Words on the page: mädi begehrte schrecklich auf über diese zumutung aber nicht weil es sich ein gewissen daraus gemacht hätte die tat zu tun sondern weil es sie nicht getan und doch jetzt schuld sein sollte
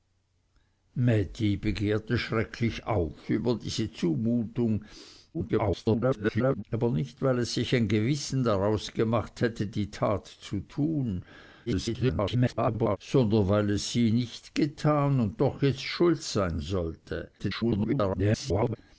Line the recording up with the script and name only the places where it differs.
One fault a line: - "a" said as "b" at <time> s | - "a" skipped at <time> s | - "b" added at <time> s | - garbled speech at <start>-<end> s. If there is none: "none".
- garbled speech at 5.3-6.6 s
- garbled speech at 11.7-13.0 s
- garbled speech at 17.4-18.8 s